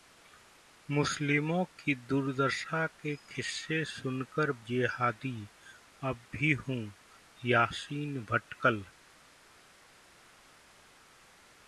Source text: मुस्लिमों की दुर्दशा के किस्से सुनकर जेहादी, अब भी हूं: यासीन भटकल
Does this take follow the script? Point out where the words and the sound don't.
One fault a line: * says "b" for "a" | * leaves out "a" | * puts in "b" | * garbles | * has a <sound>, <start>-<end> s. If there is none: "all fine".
all fine